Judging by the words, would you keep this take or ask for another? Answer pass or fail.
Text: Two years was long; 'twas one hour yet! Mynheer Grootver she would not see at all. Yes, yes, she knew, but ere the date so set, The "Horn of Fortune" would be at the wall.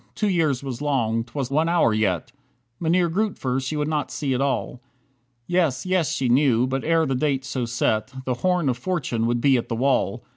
pass